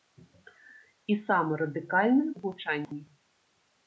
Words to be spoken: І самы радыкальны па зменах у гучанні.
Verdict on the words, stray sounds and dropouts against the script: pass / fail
fail